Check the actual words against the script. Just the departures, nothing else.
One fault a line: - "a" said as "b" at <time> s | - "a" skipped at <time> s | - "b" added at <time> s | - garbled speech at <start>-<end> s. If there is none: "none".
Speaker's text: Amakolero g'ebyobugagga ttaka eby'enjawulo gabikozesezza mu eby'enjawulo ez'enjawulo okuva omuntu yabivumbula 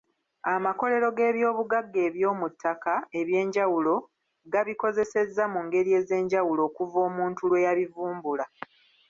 - "eby'omu" added at 2.1 s
- "eby'enjawulo" said as "ngeri" at 5.7 s
- "lwe" added at 7.5 s